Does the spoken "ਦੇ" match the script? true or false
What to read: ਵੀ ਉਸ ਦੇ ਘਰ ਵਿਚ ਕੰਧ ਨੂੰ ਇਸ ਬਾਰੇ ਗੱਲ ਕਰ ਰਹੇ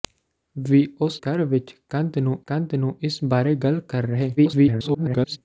false